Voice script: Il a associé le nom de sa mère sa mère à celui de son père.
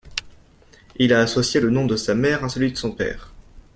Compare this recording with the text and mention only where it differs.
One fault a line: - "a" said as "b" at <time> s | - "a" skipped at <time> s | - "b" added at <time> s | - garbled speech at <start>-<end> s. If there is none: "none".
- "sa mère" skipped at 2.5 s